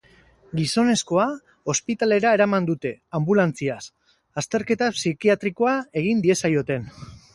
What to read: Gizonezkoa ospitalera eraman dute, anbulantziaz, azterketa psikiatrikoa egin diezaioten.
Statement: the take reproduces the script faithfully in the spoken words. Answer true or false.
true